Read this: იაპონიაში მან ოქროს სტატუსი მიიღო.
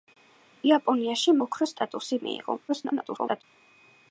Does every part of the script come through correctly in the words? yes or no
no